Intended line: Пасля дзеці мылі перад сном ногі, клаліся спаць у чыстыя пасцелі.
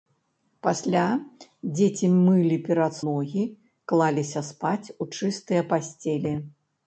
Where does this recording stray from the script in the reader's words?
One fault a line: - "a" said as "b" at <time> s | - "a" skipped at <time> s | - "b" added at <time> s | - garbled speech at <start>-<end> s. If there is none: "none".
- "сном" skipped at 3.0 s